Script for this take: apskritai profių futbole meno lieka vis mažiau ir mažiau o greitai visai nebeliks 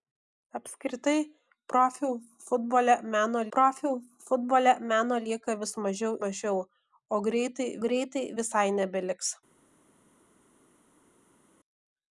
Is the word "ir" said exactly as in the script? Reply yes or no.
no